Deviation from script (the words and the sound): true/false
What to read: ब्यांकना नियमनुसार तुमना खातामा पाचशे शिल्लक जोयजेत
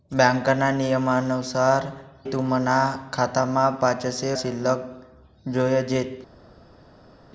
false